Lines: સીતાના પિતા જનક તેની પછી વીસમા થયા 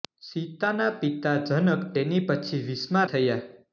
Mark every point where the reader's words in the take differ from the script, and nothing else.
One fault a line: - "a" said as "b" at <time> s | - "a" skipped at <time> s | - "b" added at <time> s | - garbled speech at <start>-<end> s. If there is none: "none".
none